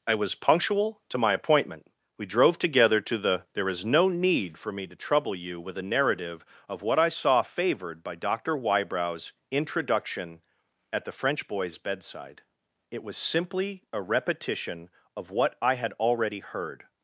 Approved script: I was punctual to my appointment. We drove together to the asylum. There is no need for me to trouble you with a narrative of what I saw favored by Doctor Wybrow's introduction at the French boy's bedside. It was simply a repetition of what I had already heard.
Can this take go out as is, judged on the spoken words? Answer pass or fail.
fail